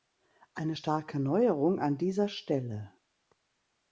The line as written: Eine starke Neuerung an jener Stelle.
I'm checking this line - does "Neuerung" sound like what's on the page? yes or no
yes